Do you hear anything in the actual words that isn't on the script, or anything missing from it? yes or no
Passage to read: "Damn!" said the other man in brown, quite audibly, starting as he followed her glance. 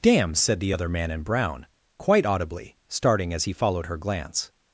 no